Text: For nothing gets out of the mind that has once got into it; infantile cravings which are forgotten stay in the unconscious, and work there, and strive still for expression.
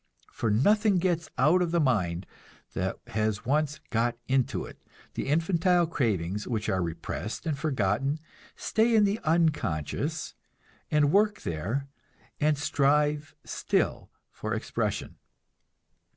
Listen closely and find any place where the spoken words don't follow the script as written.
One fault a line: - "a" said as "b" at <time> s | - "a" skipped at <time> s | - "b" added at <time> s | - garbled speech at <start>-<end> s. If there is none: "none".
- "the" added at 5.2 s
- "repressed and" added at 6.8 s